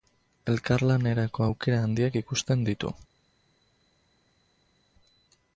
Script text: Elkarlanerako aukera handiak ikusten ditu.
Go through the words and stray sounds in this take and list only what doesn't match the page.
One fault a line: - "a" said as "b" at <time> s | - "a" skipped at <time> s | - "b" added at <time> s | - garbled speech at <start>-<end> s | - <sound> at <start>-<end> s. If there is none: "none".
none